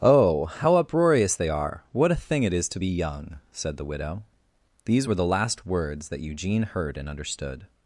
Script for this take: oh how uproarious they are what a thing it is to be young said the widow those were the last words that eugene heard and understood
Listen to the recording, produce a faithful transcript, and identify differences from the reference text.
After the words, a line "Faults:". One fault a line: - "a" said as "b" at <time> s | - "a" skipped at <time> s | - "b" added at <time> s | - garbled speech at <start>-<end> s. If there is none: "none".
oh how uproarious they are what a thing it is to be young said the widow these were the last words that eugene heard and understood
Faults:
- "those" said as "these" at 4.8 s